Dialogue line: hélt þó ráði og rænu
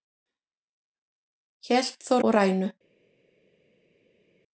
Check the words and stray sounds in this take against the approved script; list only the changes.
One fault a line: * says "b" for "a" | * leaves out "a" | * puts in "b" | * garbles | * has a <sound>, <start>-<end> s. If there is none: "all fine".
* leaves out "ráði"